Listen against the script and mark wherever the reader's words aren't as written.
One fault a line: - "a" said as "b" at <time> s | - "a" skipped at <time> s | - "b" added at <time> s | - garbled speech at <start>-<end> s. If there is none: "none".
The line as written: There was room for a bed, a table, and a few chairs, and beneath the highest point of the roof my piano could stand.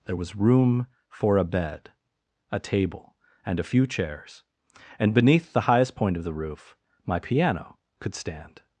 none